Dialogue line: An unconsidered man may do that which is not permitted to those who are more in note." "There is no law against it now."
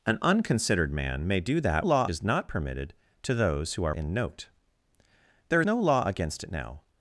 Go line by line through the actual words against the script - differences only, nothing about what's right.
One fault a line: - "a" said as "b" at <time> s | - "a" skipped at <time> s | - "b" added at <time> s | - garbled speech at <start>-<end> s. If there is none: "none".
- "which" said as "law" at 1.8 s
- "more" skipped at 3.9 s
- "is" skipped at 5.6 s